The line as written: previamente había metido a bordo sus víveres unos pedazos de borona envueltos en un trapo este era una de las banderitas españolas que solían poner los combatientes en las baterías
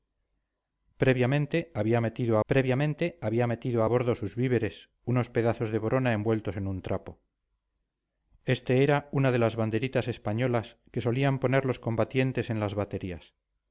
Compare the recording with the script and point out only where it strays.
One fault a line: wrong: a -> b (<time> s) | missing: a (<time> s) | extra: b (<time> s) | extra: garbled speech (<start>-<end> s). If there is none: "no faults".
extra: previamente había metido (2.5 s)